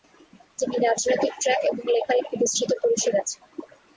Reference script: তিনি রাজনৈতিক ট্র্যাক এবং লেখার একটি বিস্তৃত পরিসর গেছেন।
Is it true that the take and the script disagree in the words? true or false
false